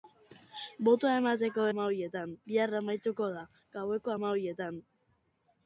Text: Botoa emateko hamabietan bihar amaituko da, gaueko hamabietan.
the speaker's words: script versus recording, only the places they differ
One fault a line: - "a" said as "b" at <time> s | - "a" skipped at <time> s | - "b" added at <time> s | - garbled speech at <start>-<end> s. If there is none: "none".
none